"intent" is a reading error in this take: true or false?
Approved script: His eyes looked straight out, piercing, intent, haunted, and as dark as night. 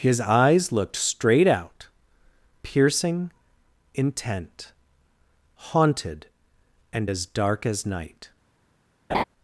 false